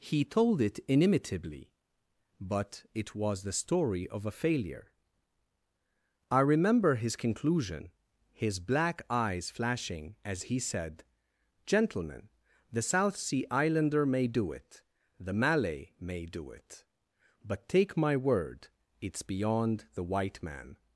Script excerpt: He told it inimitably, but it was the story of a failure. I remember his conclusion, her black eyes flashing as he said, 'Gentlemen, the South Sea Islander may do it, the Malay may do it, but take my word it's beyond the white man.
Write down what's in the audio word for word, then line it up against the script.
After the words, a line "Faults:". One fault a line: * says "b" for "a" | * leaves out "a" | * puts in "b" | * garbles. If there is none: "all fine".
He told it inimitably, but it was the story of a failure. I remember his conclusion, his black eyes flashing as he said, 'Gentlemen, the South Sea Islander may do it, the Malay may do it, but take my word it's beyond the white man.
Faults:
* says "his" for "her"